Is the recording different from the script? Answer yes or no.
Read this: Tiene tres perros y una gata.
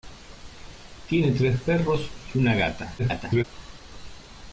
yes